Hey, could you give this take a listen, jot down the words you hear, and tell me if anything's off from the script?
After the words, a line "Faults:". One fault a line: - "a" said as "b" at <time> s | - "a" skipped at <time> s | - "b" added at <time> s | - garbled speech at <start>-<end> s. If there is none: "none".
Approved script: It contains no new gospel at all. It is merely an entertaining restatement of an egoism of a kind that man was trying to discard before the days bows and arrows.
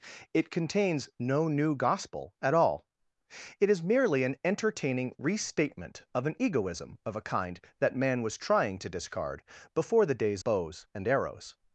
It contains no new gospel at all. It is merely an entertaining restatement of an egoism of a kind that man was trying to discard before the days bows and arrows.
Faults:
none